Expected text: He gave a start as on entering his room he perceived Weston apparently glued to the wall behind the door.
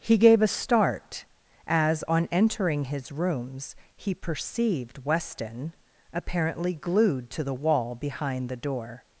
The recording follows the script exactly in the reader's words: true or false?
false